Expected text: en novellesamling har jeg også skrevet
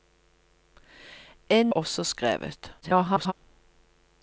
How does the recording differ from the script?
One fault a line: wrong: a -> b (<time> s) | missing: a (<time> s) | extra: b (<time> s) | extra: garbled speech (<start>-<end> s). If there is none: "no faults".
missing: novellesamling har jeg (1.6 s)
extra: garbled speech (2.8-3.3 s)